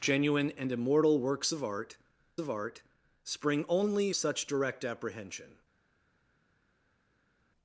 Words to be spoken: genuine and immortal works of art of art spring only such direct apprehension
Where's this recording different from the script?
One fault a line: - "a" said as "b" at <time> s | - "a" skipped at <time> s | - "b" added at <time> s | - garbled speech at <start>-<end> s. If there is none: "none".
none